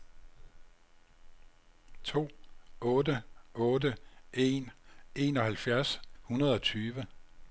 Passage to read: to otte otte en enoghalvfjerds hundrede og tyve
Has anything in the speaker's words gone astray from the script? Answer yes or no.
no